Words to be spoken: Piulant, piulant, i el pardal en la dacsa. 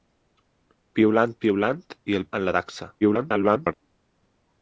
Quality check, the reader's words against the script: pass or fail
fail